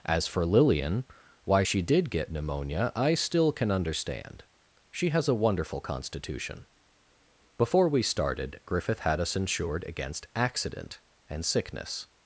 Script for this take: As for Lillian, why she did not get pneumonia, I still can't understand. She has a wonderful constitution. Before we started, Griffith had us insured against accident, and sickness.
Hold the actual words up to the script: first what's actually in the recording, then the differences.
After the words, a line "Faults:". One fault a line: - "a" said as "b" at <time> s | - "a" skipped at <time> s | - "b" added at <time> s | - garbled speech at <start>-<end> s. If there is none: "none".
As for Lillian, why she did get pneumonia, I still can understand. She has a wonderful constitution. Before we started, Griffith had us insured against accident, and sickness.
Faults:
- "not" skipped at 2.1 s
- "can't" said as "can" at 3.5 s